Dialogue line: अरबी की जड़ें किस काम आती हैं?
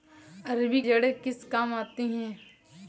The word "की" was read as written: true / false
false